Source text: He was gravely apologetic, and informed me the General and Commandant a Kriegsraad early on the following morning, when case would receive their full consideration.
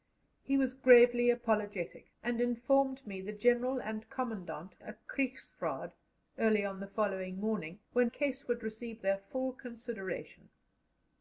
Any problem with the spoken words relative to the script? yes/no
no